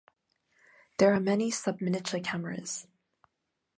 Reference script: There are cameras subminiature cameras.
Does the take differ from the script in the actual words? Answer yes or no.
yes